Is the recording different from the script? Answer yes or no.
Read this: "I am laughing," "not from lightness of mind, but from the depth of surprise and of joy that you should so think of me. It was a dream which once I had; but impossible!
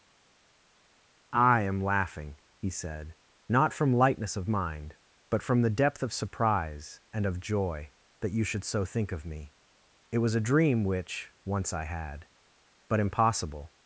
yes